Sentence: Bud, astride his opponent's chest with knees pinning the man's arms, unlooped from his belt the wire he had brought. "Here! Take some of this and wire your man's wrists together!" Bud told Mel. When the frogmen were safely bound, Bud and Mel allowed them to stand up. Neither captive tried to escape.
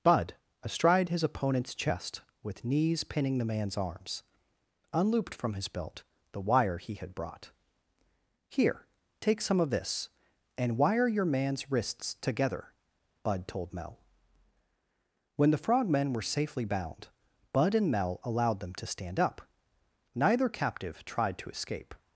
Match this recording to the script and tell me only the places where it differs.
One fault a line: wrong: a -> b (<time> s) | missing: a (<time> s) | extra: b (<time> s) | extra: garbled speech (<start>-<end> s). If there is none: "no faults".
no faults